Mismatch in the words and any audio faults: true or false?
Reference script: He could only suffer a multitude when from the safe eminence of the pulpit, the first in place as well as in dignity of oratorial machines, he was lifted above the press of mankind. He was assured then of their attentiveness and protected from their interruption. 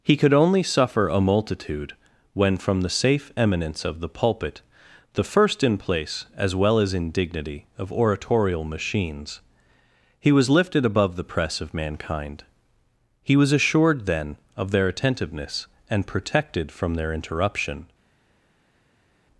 false